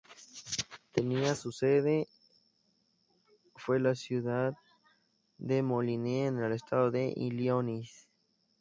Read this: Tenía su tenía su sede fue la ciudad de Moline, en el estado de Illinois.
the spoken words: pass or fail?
fail